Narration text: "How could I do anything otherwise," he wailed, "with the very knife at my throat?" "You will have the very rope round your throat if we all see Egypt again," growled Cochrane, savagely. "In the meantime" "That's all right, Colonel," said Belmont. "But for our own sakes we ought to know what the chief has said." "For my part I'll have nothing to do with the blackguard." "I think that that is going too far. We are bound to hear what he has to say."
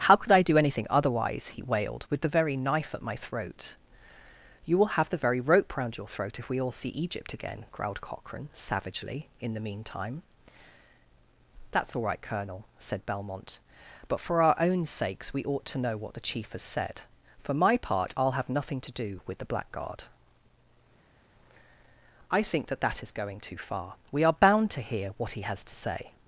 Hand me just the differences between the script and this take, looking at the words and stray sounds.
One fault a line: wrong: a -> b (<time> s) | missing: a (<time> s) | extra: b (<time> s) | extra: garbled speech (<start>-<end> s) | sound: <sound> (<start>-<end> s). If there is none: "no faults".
no faults